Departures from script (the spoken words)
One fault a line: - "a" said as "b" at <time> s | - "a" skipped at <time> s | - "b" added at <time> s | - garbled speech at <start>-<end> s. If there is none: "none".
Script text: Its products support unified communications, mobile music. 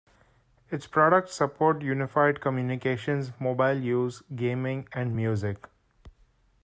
- "use gaming and" added at 3.8 s